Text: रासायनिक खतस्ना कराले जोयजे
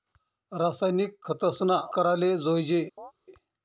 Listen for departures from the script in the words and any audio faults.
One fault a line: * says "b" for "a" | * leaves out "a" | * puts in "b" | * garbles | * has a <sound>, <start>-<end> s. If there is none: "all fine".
* has a chirp, 3.0-3.1 s